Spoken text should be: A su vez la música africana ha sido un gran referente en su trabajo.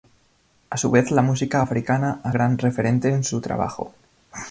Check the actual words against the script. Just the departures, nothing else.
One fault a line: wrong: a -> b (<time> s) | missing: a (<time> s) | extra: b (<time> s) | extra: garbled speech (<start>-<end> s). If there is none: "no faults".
missing: sido un (2.3 s)